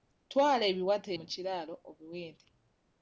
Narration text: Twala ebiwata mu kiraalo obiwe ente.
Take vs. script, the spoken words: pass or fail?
pass